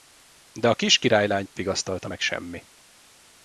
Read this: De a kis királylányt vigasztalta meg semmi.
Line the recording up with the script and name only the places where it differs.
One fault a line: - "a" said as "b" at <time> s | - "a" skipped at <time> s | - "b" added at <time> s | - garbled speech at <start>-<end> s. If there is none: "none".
none